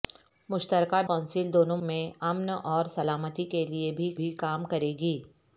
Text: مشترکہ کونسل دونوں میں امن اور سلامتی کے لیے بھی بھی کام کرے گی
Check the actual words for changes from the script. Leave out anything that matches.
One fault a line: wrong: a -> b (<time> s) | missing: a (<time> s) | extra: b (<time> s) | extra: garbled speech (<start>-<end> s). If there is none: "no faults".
no faults